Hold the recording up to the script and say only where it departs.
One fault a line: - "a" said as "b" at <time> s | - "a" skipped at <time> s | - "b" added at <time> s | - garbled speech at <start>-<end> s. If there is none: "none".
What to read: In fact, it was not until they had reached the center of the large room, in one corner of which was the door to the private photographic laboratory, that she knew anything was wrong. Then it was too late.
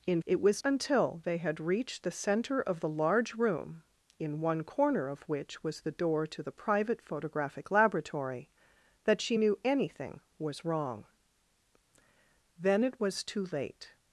- "fact" skipped at 0.2 s
- "not" skipped at 0.6 s